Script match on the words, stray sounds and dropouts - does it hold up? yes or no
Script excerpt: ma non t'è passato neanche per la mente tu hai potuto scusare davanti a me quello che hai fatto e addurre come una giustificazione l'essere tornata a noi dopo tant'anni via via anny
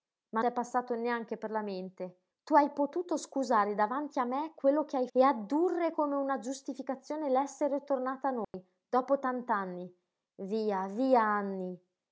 no